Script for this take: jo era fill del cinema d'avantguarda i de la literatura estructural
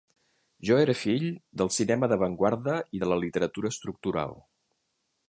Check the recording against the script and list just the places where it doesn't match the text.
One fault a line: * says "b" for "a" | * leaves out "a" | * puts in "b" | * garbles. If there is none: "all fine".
all fine